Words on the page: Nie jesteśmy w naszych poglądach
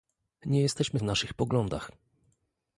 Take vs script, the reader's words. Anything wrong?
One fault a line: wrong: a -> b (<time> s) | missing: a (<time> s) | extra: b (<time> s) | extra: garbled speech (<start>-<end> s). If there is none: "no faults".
no faults